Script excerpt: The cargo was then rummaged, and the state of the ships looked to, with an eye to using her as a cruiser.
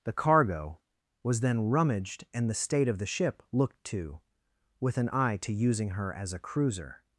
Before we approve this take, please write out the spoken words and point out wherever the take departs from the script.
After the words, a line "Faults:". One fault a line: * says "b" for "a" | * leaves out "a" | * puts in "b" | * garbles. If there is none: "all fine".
The cargo was then rummaged, and the state of the ship looked to, with an eye to using her as a cruiser.
Faults:
* says "ship" for "ships"